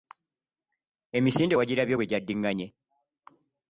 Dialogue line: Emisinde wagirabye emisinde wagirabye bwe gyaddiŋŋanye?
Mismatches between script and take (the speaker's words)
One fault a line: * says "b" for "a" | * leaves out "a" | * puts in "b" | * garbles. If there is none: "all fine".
* leaves out "emisinde wagirabye"